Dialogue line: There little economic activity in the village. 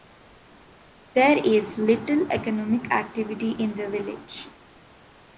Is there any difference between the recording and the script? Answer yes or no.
yes